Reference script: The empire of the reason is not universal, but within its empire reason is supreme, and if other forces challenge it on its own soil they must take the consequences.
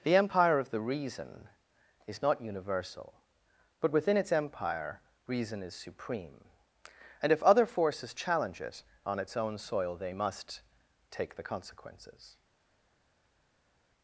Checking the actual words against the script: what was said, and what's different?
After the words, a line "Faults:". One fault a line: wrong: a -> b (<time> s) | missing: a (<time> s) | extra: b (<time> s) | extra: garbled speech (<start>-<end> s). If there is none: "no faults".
The empire of the reason is not universal, but within its empire reason is supreme, and if other forces challenge it on its own soil they must take the consequences.
Faults:
no faults